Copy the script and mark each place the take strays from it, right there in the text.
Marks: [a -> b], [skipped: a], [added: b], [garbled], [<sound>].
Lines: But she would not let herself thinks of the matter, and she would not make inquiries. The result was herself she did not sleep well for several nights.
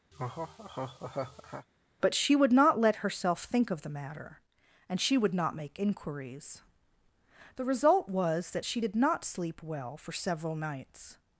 [laugh] But she would not let herself [thinks -> think] of the matter, and she would not make inquiries. The result was [herself -> that] she did not sleep well for several nights.